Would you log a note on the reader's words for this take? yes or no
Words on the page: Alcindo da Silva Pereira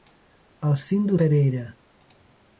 yes